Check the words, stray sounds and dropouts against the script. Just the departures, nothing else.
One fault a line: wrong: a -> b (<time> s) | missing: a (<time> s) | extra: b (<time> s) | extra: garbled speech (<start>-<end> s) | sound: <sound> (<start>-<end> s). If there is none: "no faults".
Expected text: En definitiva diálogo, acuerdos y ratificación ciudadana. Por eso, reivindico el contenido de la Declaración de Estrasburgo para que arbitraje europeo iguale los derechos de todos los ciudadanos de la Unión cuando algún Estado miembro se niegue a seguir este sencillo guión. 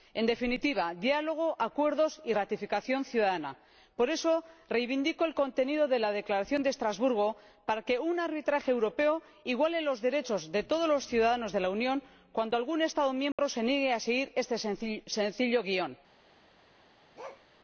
extra: un (8.0 s)
sound: dropout (13.3-13.4 s)
sound: bark (17.2-17.5 s)